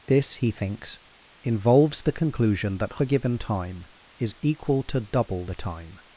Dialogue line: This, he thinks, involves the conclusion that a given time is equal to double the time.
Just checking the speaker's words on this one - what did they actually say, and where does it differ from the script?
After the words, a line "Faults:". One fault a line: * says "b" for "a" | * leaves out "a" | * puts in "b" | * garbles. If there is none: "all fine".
This, he thinks, involves the conclusion that a given time is equal to double the time.
Faults:
all fine